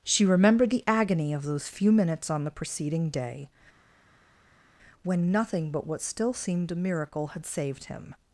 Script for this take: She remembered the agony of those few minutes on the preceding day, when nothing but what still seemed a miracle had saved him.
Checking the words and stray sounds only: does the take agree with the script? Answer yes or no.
yes